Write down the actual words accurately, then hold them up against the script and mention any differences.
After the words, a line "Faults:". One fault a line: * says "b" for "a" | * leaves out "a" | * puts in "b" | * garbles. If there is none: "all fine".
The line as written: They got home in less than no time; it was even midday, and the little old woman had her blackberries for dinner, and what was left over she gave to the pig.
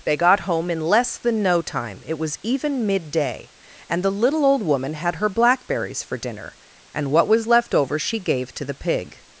They got home in less than no time; it was even midday, and the little old woman had her blackberries for dinner, and what was left over she gave to the pig.
Faults:
all fine